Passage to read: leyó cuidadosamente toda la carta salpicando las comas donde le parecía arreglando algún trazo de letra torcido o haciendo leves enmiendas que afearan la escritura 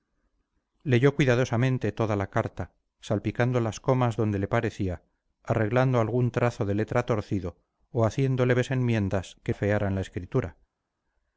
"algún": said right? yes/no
yes